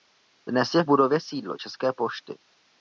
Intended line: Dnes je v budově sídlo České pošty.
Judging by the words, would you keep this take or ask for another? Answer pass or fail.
pass